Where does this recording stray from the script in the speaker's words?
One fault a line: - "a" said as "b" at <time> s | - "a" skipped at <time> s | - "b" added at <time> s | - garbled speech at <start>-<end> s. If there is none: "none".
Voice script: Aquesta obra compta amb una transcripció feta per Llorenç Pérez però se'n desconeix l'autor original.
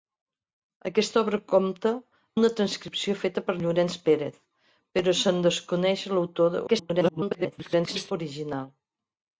- "amb" skipped at 1.9 s
- garbled speech at 6.7-8.1 s